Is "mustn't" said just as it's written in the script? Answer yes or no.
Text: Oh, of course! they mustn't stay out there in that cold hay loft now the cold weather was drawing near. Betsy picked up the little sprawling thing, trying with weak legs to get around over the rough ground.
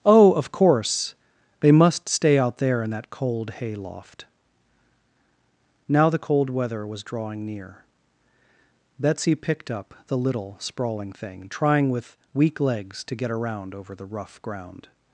no